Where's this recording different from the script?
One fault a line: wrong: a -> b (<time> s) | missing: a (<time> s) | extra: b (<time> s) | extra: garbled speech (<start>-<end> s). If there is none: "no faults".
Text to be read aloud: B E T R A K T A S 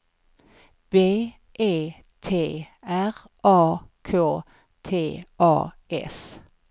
no faults